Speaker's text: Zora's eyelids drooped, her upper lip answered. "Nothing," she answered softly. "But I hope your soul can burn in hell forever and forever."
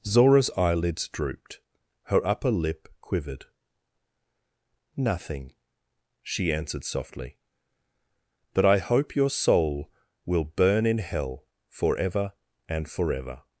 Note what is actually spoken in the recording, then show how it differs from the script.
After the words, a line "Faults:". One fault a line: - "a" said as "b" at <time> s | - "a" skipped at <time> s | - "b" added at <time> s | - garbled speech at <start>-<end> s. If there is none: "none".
Zora's eyelids drooped, her upper lip quivered. "Nothing," she answered softly. "But I hope your soul will burn in hell forever and forever."
Faults:
- "answered" said as "quivered" at 3.0 s
- "can" said as "will" at 10.2 s